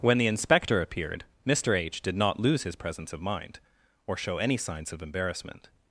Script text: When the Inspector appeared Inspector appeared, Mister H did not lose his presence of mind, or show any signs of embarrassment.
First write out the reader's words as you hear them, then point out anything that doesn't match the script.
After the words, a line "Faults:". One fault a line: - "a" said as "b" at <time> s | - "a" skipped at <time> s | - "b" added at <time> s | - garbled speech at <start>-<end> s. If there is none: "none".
When the Inspector appeared, Mister H did not lose his presence of mind, or show any signs of embarrassment.
Faults:
- "Inspector appeared" skipped at 1.2 s